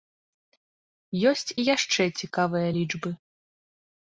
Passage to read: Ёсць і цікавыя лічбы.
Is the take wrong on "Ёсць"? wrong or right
right